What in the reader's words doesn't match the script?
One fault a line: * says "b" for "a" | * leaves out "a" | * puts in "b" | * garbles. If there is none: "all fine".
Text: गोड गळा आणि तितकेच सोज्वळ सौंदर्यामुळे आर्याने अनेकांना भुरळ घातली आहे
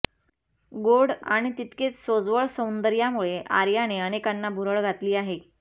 * leaves out "गळा"